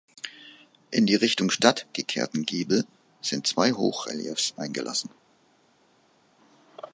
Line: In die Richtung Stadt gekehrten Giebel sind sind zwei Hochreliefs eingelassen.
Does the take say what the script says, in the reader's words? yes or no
no